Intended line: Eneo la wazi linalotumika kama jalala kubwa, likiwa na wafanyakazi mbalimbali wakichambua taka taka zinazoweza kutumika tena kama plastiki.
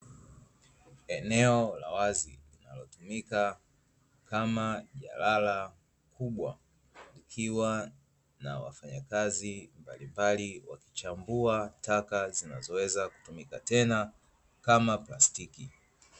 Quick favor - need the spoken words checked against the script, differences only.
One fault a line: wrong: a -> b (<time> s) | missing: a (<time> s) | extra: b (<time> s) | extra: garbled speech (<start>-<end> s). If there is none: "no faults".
missing: taka (12.3 s)